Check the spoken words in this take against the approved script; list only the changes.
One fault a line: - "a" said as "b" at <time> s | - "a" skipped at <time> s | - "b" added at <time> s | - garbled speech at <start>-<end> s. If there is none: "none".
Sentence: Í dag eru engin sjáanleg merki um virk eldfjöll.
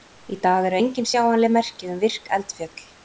none